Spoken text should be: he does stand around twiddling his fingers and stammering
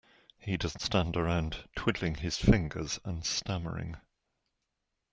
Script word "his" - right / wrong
right